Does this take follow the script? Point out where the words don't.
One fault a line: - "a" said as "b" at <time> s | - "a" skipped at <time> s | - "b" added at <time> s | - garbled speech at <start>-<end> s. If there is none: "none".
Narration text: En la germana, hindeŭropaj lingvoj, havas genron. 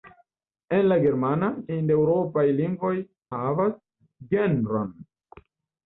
none